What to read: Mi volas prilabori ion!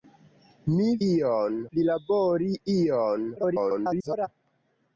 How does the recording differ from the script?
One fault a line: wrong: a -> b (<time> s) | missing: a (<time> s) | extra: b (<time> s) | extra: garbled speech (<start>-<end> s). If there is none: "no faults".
wrong: volas -> ion (1.1 s)
extra: garbled speech (3.4-4.3 s)